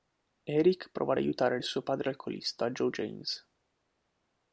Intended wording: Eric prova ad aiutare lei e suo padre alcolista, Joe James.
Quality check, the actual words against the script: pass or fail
fail